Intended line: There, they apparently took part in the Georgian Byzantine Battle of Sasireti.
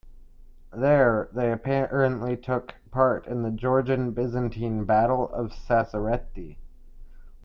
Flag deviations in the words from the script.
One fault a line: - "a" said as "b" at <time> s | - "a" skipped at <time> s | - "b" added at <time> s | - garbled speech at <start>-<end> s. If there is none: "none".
none